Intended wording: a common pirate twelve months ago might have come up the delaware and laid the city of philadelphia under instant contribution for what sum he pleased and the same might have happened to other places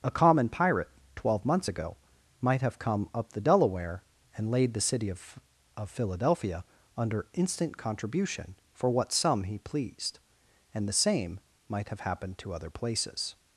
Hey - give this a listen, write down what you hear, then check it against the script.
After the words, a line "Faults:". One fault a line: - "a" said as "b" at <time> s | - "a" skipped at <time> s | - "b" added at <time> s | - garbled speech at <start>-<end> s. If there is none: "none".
a common pirate twelve months ago might have come up the delaware and laid the city of of philadelphia under instant contribution for what sum he pleased and the same might have happened to other places
Faults:
- "of" added at 5.8 s